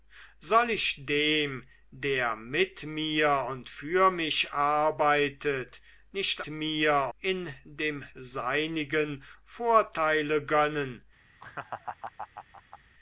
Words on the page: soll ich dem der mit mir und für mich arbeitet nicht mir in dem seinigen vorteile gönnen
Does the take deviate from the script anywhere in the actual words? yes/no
no